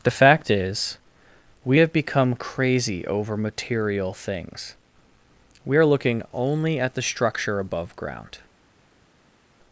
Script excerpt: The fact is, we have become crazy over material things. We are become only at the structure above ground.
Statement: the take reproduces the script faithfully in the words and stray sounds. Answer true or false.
false